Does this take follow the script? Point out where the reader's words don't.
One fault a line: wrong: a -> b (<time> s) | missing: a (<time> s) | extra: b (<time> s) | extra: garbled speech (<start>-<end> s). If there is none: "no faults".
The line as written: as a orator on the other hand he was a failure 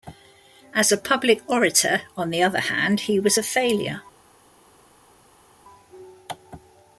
extra: public (1.0 s)